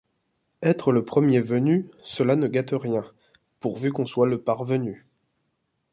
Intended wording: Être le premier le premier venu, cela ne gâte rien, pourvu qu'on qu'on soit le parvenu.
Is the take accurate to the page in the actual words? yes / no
no